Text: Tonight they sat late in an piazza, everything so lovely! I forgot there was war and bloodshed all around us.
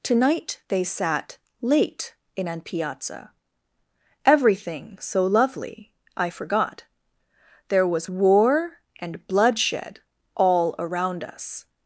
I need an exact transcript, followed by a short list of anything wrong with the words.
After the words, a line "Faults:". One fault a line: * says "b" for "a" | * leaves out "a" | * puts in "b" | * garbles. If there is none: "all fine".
Tonight they sat late in an piazza, everything so lovely! I forgot there was war and bloodshed all around us.
Faults:
all fine